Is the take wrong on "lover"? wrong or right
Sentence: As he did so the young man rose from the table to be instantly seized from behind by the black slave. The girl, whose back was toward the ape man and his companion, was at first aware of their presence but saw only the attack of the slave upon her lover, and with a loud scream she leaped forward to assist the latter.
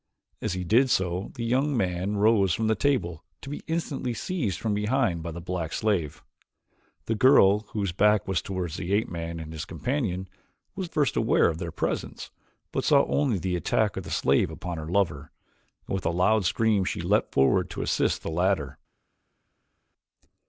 right